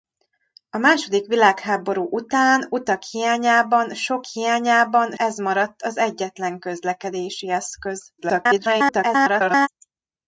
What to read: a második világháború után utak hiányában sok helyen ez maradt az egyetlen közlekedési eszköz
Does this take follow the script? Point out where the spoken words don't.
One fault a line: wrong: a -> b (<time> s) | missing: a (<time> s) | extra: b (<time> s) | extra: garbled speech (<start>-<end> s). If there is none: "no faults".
wrong: helyen -> hiányában (4.2 s)
extra: garbled speech (8.2-9.7 s)